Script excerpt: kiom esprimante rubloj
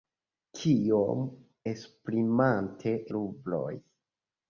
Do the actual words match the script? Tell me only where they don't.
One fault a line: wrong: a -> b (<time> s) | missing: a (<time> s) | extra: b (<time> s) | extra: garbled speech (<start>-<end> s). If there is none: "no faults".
no faults